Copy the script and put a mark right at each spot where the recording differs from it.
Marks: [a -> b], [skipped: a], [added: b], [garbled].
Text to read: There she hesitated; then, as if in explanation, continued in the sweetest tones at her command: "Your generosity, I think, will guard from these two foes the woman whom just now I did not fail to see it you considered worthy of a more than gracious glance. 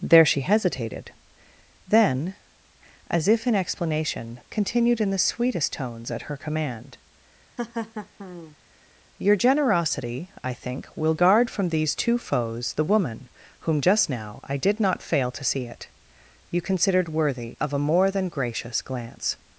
There she hesitated; then, as if in explanation, continued in the sweetest tones at her command: "Your generosity, I think, will guard from these two foes the woman whom just now I did not fail to see it you considered worthy of a more than gracious glance.